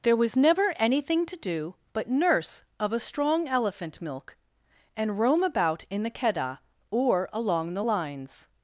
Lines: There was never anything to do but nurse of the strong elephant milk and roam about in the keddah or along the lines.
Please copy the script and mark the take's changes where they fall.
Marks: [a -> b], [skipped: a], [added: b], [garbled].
There was never anything to do but nurse of [the -> a] strong elephant milk and roam about in the keddah or along the lines.